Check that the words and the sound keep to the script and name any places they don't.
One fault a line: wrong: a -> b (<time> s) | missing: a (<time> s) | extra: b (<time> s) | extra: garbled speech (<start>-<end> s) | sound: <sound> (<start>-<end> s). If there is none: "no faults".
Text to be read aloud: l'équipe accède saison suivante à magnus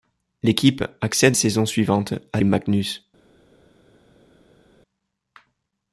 no faults